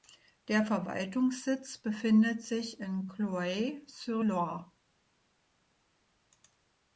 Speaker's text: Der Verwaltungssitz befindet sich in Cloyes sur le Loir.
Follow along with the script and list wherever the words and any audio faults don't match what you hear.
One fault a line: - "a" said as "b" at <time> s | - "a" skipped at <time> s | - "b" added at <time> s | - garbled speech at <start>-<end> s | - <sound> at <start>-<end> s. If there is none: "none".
- "le" skipped at 4.2 s